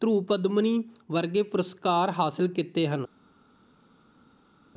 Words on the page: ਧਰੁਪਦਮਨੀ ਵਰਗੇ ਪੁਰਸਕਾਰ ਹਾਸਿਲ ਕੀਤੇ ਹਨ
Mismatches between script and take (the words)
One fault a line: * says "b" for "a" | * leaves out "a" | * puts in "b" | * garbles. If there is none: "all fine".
all fine